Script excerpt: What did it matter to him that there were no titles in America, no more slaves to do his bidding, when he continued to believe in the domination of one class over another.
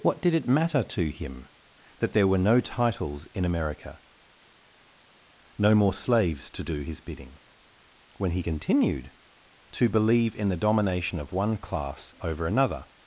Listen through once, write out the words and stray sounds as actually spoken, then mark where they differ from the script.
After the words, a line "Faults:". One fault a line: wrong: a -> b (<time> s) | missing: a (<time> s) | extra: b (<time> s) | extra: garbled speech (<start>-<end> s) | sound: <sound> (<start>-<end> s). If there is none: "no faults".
What did it matter to him that there were no titles in America, no more slaves to do his bidding, when he continued to believe in the domination of one class over another.
Faults:
no faults